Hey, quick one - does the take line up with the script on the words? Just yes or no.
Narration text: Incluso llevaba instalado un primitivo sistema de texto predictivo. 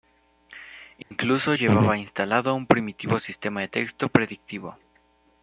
yes